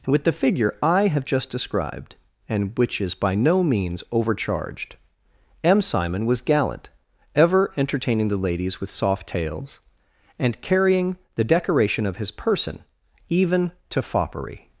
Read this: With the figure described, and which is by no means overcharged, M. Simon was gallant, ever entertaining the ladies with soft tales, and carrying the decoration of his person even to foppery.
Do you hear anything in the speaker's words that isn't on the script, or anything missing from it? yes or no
yes